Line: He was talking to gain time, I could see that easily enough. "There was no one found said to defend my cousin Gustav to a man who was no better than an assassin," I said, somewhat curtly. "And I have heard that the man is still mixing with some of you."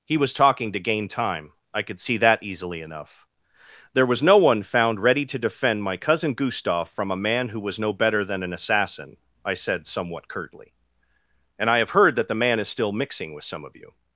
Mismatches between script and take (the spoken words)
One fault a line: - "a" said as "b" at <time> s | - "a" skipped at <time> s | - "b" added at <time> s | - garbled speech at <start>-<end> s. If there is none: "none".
- "said" said as "ready" at 5.0 s
- "to" said as "from" at 6.9 s